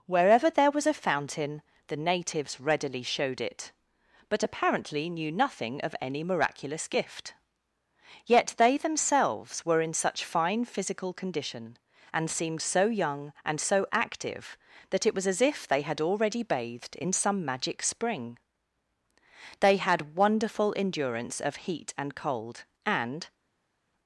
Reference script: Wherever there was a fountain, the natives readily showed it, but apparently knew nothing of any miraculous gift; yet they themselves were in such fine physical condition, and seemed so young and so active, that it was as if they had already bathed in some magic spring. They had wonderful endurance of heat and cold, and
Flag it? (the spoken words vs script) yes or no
no